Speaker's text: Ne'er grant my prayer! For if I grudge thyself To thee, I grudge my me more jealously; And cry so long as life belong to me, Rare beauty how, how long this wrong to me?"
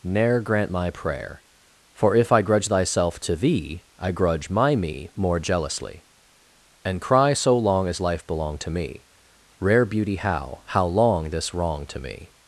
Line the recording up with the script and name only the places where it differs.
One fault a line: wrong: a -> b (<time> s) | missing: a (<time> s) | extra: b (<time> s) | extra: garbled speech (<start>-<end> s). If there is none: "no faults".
no faults